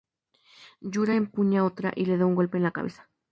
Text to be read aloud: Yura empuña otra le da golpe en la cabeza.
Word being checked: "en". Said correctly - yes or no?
yes